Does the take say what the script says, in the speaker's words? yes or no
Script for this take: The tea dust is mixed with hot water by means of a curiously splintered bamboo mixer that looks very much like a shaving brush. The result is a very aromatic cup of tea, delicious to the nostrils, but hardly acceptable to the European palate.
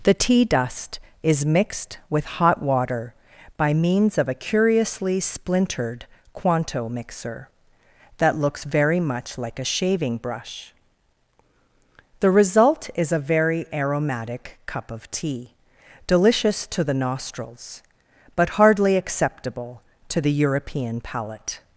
no